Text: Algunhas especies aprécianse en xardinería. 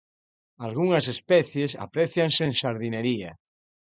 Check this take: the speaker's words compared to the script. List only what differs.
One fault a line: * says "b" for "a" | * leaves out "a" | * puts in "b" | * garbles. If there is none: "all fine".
all fine